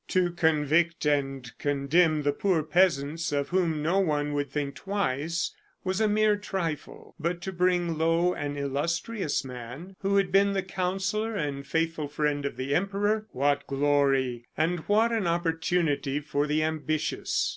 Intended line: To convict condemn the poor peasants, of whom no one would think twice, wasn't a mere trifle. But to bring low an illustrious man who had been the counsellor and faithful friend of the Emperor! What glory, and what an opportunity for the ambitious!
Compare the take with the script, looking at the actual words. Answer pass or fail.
fail